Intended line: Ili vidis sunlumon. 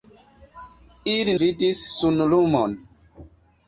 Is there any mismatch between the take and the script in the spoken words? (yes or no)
no